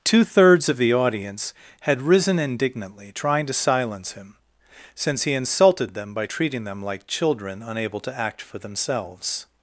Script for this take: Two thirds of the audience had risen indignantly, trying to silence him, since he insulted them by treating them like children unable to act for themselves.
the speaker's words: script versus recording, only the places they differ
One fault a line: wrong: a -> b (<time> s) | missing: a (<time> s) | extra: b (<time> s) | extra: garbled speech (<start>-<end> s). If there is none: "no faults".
no faults